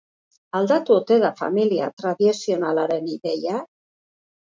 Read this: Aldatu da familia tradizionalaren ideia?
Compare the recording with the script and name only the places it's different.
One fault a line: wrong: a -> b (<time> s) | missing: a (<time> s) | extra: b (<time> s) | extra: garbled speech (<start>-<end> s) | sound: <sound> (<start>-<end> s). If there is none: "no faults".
extra: ote (1.0 s)